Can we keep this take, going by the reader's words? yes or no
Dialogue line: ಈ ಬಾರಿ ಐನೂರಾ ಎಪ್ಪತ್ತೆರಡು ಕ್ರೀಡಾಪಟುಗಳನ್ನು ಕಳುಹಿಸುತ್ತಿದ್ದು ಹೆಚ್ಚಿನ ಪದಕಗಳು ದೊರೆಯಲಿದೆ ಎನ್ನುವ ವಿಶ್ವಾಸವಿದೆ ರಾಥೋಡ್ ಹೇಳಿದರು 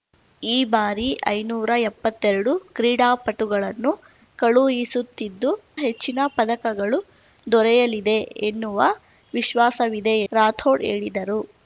yes